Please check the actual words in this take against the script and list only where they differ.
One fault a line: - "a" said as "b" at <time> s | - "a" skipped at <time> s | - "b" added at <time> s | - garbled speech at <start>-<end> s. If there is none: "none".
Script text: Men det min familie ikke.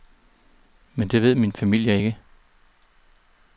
- "ved" added at 1.2 s